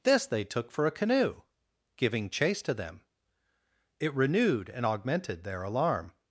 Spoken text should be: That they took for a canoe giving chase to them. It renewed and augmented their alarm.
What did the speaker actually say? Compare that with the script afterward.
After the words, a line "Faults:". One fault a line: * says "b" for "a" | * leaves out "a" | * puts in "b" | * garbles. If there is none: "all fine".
This they took for a canoe giving chase to them. It renewed and augmented their alarm.
Faults:
* says "This" for "That"